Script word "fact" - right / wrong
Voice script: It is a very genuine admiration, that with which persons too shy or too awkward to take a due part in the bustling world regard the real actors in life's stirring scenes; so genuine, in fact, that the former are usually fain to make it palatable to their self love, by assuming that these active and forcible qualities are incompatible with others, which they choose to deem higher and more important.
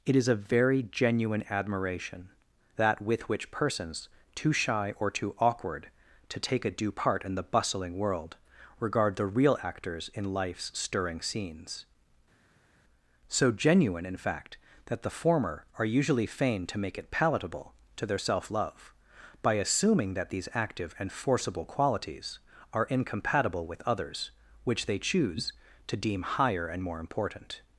right